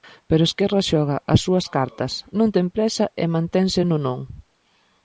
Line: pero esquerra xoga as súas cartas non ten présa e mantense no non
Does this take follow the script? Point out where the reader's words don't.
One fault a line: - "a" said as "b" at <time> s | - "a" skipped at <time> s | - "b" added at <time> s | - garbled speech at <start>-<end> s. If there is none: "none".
none